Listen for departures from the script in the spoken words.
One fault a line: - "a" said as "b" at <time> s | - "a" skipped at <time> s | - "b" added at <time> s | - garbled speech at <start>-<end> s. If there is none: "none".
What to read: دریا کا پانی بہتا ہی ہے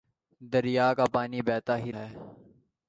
none